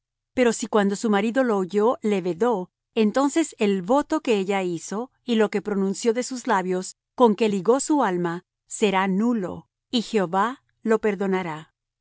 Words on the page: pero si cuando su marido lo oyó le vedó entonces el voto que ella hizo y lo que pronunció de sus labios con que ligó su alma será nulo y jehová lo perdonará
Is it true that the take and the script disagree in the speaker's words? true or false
false